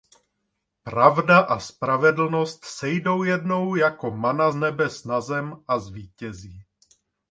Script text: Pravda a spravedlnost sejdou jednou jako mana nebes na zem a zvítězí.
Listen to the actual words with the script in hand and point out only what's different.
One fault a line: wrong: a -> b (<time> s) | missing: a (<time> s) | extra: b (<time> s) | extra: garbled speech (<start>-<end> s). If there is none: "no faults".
no faults